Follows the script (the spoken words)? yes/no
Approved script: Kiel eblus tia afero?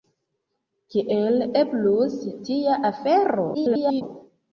no